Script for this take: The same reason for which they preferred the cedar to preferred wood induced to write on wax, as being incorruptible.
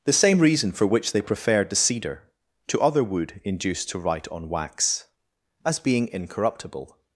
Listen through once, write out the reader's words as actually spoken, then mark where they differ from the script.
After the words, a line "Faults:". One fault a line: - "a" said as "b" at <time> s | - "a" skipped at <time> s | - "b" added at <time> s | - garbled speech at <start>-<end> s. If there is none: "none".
The same reason for which they preferred the cedar to other wood induced to write on wax, as being incorruptible.
Faults:
- "preferred" said as "other" at 2.8 s